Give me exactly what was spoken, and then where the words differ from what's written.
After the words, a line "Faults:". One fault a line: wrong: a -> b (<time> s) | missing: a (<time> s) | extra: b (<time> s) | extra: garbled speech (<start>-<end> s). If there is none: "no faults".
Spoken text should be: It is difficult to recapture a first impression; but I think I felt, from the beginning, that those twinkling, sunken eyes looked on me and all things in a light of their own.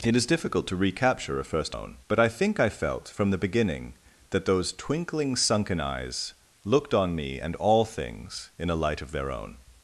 It is difficult to recapture a first own; but I think I felt, from the beginning, that those twinkling, sunken eyes looked on me and all things in a light of their own.
Faults:
wrong: impression -> own (1.7 s)